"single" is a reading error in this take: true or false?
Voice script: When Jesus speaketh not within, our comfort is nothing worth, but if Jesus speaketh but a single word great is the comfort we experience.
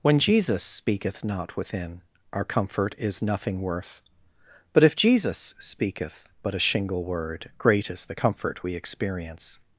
true